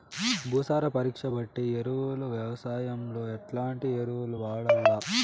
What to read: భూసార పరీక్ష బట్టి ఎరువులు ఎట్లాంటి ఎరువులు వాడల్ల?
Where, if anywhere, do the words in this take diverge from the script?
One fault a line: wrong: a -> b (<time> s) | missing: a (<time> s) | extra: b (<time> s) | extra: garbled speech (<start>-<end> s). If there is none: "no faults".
extra: వ్యవసాయంలో (2.3 s)